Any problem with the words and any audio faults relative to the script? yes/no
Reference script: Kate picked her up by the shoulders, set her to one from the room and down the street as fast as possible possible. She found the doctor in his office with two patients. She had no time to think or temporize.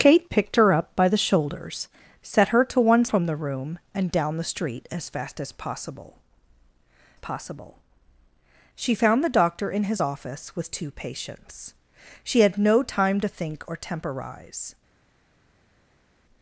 no